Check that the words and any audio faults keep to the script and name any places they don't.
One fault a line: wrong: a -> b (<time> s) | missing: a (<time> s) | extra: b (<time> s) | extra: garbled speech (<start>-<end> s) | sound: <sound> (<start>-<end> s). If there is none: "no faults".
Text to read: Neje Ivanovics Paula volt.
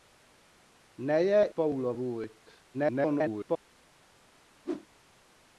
missing: Ivanovics (1.5 s)
extra: garbled speech (2.7-3.6 s)
sound: whoosh (4.6-4.9 s)